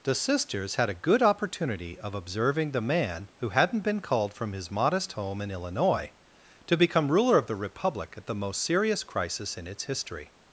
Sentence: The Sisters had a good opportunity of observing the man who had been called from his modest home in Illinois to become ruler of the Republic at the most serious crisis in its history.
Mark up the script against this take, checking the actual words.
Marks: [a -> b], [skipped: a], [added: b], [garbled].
The Sisters had a good opportunity of observing the man who [had -> hadn't] been called from his modest home in Illinois to become ruler of the Republic at the most serious crisis in its history.